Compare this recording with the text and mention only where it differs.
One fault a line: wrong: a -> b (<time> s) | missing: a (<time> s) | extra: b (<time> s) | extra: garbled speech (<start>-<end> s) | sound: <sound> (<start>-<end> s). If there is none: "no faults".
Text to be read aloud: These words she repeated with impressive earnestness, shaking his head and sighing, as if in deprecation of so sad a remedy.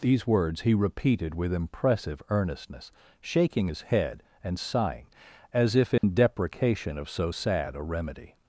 wrong: she -> he (0.6 s)
sound: dropout (6.0-6.0 s)